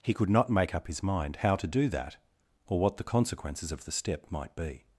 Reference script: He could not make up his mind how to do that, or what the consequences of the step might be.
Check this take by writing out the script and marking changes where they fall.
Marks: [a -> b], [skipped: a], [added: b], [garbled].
He could not make up his mind how to do that, or what the consequences of the step might be.